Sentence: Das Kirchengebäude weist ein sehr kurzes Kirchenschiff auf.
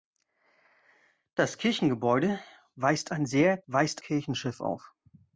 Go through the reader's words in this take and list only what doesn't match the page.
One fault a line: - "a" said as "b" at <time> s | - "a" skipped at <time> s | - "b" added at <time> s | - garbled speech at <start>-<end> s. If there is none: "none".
- "kurzes" said as "weist" at 3.7 s